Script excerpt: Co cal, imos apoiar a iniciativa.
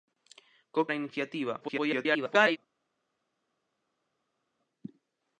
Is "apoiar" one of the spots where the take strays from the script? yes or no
yes